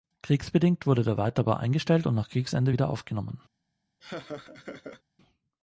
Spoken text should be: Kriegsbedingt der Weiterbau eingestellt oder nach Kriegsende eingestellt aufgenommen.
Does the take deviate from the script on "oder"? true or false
true